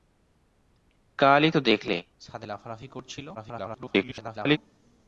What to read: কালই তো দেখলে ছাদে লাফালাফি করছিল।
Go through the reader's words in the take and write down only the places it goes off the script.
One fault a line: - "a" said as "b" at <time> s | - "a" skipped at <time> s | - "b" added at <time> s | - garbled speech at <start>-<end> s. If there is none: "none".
- garbled speech at 3.3-4.6 s